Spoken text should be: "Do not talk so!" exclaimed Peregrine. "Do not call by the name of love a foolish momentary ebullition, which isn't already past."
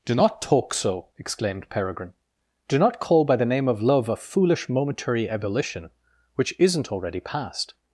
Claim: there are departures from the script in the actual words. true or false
false